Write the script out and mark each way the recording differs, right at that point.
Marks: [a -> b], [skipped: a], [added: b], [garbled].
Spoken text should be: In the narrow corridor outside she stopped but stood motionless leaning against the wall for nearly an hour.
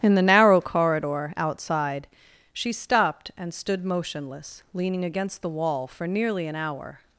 In the narrow corridor outside she stopped [but -> and] stood motionless leaning against the wall for nearly an hour.